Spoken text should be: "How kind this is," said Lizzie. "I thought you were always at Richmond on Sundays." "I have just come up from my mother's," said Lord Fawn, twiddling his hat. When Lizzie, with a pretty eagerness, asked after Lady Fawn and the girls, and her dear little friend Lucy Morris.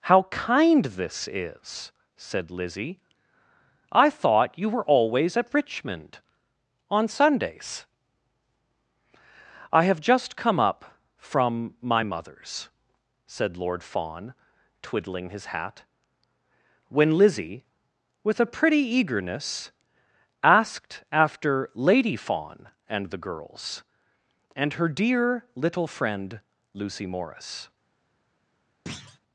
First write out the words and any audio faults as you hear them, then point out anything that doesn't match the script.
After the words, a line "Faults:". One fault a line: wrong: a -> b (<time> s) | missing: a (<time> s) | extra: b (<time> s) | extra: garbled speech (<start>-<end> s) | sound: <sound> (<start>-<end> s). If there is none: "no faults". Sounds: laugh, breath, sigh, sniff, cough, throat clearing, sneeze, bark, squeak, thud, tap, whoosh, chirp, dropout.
"How kind this is," said Lizzie. "I thought you were always at Richmond on Sundays." "I have just come up from my mother's," said Lord Fawn, twiddling his hat. When Lizzie, with a pretty eagerness, asked after Lady Fawn and the girls, and her dear little friend Lucy Morris.
Faults:
sound: thud (28.9-29.2 s)